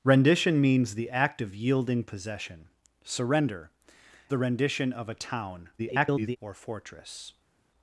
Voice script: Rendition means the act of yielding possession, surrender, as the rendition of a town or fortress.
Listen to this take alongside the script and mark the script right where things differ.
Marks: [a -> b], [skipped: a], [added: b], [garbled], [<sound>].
Rendition means the act of yielding possession, surrender, [skipped: as] the rendition of a town [garbled] or fortress.